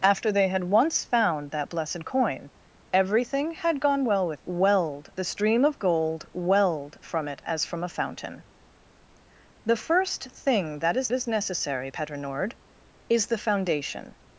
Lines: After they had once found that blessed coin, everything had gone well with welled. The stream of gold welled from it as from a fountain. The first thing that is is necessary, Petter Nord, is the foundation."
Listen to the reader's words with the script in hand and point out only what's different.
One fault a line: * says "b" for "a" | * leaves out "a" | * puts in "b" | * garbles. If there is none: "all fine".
all fine